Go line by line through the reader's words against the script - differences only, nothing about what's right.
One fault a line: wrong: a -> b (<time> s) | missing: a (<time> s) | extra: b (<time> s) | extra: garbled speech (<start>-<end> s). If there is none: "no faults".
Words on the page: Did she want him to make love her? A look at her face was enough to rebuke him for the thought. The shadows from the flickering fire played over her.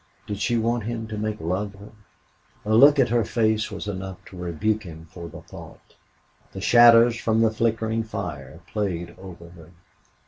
no faults